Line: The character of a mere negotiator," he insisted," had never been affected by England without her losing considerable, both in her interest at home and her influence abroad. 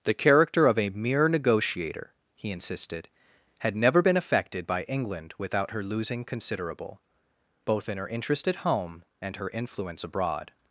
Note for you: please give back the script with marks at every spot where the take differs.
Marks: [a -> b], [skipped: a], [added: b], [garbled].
The character of a mere negotiator," he insisted," had never been affected by England without her losing considerable, both in her interest at home and her influence abroad.